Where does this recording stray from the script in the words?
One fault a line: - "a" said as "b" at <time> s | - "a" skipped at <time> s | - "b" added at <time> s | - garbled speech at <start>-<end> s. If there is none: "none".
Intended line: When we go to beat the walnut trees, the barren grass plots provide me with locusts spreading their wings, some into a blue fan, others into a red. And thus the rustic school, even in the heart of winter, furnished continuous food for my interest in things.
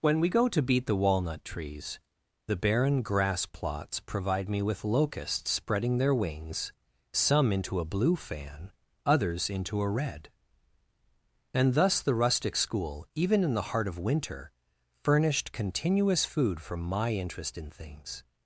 none